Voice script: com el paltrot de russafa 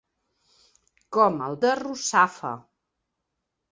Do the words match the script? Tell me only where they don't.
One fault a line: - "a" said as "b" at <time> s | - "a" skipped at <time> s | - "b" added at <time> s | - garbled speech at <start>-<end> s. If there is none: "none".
- "paltrot" skipped at 1.6 s